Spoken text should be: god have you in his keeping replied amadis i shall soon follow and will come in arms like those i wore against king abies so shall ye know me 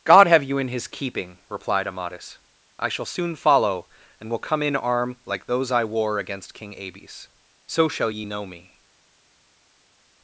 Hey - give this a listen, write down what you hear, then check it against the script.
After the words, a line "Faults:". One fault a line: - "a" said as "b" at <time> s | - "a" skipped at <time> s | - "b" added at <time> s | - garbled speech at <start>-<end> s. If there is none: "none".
god have you in his keeping replied amadis i shall soon follow and will come in arm like those i wore against king abies so shall ye know me
Faults:
- "arms" said as "arm" at 4.8 s